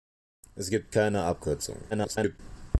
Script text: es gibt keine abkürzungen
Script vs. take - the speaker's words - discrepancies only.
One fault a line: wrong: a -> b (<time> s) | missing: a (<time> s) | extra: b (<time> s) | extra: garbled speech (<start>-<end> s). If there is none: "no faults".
extra: garbled speech (1.9-2.4 s)